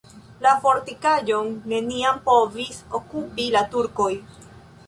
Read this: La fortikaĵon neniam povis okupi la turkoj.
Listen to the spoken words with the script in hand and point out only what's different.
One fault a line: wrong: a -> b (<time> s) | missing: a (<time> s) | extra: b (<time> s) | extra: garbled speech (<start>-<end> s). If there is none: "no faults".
no faults